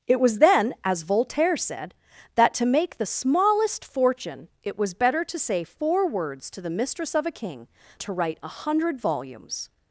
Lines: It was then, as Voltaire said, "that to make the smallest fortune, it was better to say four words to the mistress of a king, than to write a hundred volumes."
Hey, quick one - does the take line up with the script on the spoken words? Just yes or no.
no